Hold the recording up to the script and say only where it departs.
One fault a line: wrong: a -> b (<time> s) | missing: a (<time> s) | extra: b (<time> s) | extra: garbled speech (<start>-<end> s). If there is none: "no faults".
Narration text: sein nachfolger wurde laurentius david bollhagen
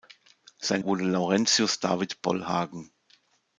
missing: nachfolger (0.8 s)